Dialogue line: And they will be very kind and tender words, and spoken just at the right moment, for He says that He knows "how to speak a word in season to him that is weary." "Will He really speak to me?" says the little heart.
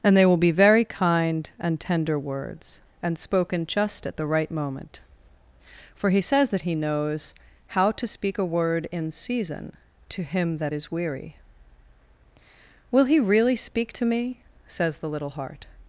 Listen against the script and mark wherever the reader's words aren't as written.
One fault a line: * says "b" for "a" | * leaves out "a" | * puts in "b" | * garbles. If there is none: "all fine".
all fine